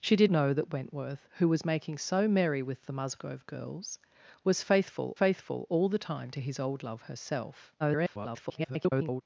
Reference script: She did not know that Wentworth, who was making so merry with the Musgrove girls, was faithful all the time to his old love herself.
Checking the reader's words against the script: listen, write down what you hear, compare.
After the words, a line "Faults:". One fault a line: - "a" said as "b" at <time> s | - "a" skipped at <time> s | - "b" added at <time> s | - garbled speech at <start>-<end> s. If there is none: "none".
She did know that Wentworth, who was making so merry with the Musgrove girls, was faithful faithful all the time to his old love herself. [garbled]
Faults:
- "not" skipped at 0.3 s
- "faithful" added at 5.1 s
- garbled speech at 7.8-9.2 s